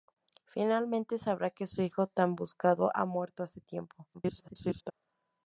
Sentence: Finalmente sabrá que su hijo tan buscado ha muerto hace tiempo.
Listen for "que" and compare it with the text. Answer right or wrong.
right